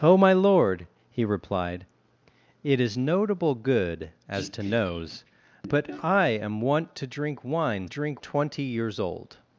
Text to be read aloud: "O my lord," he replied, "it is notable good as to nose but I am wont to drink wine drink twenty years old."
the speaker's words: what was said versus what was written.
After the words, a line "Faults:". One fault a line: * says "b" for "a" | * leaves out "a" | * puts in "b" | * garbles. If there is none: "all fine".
"O my lord," he replied, "it is notable good as to nose but I am wont to drink wine drink twenty years old."
Faults:
all fine